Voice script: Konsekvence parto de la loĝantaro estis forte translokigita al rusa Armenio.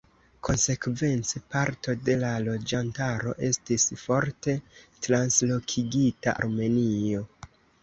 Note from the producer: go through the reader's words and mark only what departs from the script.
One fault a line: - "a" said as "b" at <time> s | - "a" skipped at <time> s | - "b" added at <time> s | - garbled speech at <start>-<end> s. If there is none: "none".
- "al rusa" skipped at 6.3 s